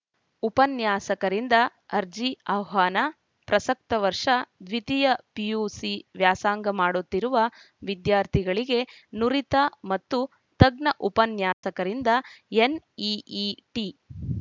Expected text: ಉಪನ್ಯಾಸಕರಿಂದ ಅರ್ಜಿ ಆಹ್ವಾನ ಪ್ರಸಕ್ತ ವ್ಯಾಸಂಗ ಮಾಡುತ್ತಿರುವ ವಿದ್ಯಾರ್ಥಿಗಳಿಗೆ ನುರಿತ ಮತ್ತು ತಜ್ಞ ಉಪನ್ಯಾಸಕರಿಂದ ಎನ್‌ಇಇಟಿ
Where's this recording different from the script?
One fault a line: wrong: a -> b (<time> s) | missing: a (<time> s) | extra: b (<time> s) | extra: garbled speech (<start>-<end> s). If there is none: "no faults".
extra: ವರ್ಷ ದ್ವಿತೀಯ ಪಿಯುಸಿ (4.0 s)